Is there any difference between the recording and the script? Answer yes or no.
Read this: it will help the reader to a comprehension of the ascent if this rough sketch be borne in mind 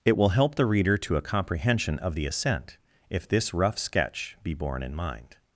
no